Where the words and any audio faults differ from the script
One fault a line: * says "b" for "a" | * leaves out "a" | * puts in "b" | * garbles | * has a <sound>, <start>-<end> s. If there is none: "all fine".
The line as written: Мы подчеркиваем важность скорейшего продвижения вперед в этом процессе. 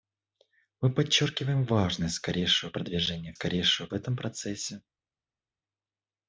* says "скорейшего" for "вперед"